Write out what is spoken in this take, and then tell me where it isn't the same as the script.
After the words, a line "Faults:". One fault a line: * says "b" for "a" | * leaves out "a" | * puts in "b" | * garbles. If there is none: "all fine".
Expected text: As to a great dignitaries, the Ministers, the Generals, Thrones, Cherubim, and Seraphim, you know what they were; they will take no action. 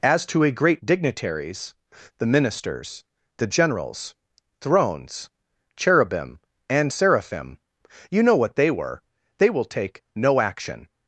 As to a great dignitaries, the Ministers, the Generals, Thrones, Cherubim, and Seraphim, you know what they were; they will take no action.
Faults:
all fine